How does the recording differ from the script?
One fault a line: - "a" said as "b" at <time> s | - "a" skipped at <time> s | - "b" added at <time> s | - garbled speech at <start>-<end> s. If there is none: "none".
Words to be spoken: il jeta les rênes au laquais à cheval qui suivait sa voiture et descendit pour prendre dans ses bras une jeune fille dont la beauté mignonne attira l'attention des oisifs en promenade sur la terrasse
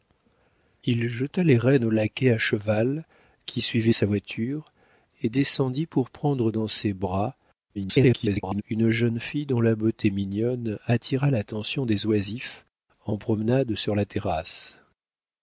- garbled speech at 7.7-8.6 s